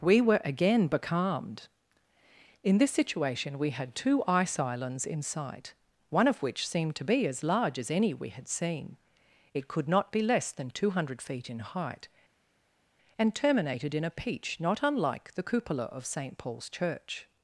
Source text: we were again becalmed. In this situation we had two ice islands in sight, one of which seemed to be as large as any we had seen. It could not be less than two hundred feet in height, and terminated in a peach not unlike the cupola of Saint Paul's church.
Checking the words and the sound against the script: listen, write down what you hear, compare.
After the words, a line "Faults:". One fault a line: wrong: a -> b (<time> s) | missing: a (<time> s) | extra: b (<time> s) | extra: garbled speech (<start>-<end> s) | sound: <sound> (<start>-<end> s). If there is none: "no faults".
we were again becalmed. In this situation we had two ice islands in sight, one of which seemed to be as large as any we had seen. It could not be less than two hundred feet in height, and terminated in a peach not unlike the cupola of Saint Paul's church.
Faults:
no faults